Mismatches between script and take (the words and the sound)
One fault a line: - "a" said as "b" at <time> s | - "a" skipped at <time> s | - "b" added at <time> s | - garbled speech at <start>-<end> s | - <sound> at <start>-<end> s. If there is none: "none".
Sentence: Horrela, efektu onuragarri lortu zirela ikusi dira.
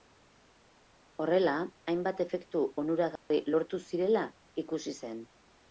- "hainbat" added at 1.9 s
- dropout at 3.2-3.3 s
- "dira" said as "zen" at 5.0 s